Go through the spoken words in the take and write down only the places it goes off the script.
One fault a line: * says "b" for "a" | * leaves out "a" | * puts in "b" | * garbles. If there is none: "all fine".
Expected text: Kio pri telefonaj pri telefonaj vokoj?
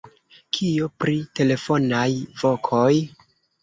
* leaves out "pri telefonaj"